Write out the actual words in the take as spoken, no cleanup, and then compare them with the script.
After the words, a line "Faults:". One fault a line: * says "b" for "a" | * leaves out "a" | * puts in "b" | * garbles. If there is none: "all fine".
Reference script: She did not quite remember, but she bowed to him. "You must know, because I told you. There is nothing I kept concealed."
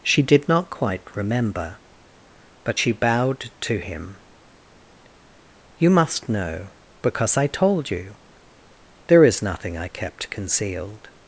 She did not quite remember, but she bowed to him. "You must know, because I told you. There is nothing I kept concealed."
Faults:
all fine